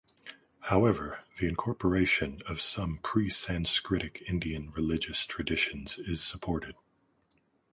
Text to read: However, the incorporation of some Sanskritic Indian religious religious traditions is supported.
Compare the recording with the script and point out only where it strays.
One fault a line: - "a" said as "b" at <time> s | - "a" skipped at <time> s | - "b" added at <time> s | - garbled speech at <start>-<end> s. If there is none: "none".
- "pre" added at 3.0 s
- "religious" skipped at 5.3 s